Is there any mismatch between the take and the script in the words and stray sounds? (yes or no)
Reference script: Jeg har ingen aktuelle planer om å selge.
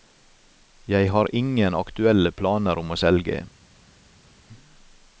no